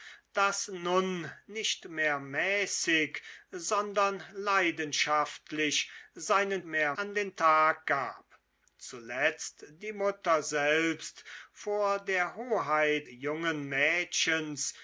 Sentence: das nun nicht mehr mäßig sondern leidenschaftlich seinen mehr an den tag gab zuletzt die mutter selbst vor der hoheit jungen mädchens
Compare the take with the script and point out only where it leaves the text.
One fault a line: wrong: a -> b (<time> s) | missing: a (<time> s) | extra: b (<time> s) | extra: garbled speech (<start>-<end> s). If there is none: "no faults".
no faults